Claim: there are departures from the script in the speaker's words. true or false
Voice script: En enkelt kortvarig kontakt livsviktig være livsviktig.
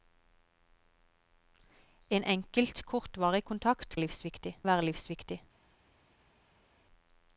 false